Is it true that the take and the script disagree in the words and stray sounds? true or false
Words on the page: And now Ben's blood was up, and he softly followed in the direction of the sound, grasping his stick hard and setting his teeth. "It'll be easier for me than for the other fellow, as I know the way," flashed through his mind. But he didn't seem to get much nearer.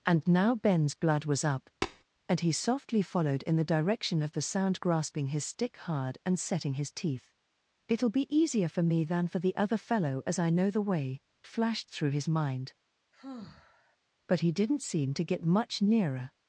true